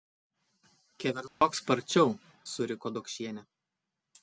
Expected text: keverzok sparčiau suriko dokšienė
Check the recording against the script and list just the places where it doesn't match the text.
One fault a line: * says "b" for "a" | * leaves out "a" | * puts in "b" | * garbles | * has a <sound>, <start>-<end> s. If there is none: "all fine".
* has a dropout, 1.3-1.4 s